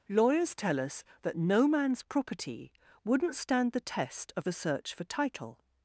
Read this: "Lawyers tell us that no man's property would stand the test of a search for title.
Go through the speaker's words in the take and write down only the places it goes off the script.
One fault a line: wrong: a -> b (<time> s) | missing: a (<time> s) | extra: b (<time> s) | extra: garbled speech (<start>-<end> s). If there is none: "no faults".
wrong: would -> wouldn't (3.0 s)